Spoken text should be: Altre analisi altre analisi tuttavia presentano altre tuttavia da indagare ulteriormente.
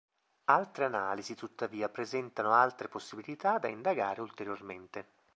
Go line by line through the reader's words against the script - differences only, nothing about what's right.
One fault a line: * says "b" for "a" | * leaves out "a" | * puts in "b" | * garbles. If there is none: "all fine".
* leaves out "altre analisi"
* says "possibilità" for "tuttavia"